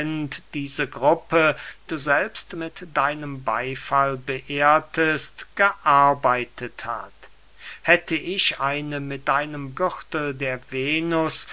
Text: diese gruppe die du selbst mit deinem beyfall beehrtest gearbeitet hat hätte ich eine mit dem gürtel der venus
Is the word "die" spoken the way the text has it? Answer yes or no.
no